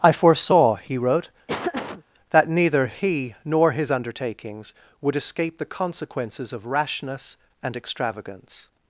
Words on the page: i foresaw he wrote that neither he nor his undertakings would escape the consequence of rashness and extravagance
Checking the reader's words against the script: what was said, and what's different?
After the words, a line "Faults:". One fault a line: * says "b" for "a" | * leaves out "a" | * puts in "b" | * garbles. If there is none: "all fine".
i foresaw he wrote that neither he nor his undertakings would escape the consequences of rashness and extravagance
Faults:
* says "consequences" for "consequence"